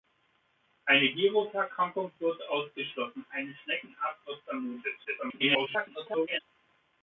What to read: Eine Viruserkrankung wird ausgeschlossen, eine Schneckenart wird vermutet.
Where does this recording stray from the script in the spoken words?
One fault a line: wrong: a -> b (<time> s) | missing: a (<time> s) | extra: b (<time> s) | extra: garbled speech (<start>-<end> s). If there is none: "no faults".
extra: garbled speech (5.0-6.4 s)